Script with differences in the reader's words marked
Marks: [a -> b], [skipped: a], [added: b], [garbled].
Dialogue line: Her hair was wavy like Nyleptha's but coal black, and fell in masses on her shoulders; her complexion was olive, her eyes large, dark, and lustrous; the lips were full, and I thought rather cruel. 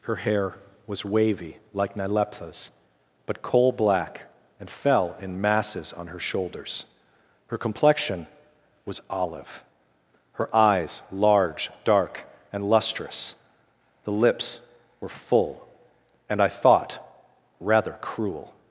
Her hair was wavy like Nyleptha's but coal black, and fell in masses on her shoulders; her complexion was olive, her eyes large, dark, and lustrous; the lips were full, and I thought rather cruel.